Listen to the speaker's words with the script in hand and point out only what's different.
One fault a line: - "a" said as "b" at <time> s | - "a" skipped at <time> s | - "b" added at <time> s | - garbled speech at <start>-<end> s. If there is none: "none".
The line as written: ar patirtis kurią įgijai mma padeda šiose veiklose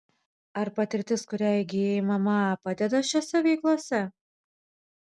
none